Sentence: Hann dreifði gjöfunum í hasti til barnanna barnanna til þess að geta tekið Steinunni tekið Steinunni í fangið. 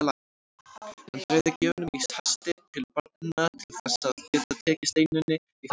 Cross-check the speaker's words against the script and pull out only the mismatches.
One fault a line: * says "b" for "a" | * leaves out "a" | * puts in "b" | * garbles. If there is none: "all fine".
* leaves out "barnanna"
* leaves out "tekið Steinunni"